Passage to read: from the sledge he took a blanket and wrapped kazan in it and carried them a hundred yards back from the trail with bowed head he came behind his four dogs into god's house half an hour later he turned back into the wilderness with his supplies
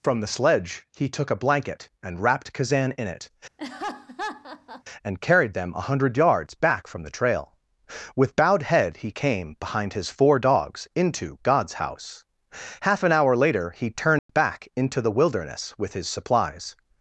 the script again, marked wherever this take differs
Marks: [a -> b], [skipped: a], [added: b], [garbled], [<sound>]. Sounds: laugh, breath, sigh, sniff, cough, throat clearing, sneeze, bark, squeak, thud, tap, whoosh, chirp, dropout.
from the sledge he took a blanket and wrapped kazan in it [laugh] and carried them a hundred yards back from the trail with bowed head he came behind his four dogs into god's house half an hour later he turned [dropout] back into the wilderness with his supplies